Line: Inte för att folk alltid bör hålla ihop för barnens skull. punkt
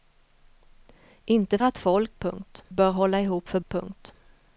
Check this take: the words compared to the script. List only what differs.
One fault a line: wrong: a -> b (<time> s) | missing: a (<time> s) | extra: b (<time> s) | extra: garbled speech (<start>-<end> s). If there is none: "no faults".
missing: för (1.6 s)
wrong: alltid -> punkt (2.2 s)
missing: barnens skull (3.6 s)